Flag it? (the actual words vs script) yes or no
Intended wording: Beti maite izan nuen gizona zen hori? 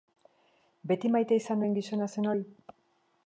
no